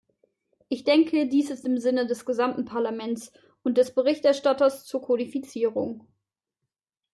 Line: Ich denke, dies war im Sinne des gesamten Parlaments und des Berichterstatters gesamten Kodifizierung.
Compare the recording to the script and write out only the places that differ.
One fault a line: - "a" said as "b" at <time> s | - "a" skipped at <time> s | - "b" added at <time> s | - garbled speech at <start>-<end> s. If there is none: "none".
- "war" said as "ist" at 1.5 s
- "gesamten" said as "zur" at 4.8 s